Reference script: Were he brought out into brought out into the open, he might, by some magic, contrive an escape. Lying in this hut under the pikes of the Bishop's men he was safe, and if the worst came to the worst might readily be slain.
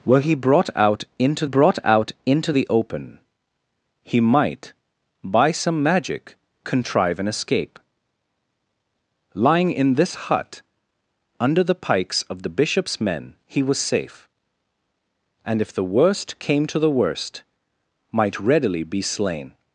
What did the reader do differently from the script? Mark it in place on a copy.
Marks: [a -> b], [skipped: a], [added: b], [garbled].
Were he brought out into brought out into the open, he might, by some magic, contrive an escape. Lying in this hut under the pikes of the Bishop's men he was safe, and if the worst came to the worst might readily be slain.